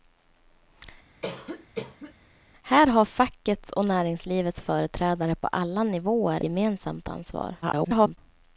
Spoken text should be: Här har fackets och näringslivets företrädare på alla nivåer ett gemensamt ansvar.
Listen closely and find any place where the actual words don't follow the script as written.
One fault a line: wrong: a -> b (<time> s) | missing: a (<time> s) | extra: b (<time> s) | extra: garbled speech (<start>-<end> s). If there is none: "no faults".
missing: ett (6.4 s)
extra: garbled speech (7.6-8.2 s)